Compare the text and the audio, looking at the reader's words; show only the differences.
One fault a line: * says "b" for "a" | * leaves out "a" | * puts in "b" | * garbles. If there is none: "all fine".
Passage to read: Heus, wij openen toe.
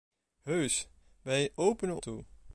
all fine